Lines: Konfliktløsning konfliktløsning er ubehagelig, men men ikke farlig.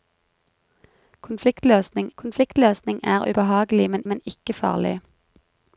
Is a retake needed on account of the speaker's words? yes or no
no